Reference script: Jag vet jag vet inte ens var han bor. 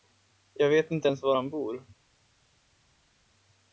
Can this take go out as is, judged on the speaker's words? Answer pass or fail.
fail